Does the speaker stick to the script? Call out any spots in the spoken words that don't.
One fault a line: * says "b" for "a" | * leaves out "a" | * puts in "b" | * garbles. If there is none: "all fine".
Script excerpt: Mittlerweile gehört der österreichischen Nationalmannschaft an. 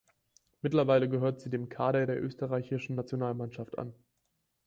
* puts in "sie dem Kader"